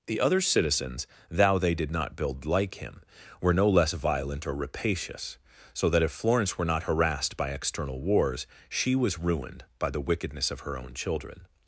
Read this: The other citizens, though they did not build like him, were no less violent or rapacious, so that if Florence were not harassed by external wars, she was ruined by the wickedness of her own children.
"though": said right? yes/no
no